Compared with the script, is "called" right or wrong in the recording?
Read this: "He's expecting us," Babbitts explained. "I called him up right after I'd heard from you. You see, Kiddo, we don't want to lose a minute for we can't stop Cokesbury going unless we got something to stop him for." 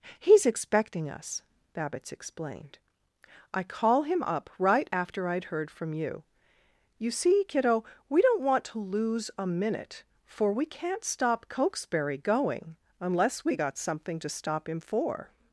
wrong